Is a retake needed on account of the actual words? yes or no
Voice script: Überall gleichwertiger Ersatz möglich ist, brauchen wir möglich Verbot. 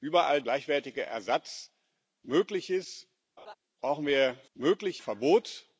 no